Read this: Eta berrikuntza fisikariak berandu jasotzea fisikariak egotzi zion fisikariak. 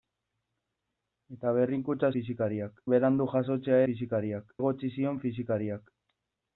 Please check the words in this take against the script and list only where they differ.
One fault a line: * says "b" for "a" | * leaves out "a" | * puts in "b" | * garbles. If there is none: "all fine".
all fine